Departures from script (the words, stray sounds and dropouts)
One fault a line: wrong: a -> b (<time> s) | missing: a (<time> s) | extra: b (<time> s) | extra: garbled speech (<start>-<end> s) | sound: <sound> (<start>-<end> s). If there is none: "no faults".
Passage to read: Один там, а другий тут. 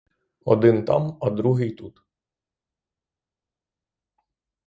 no faults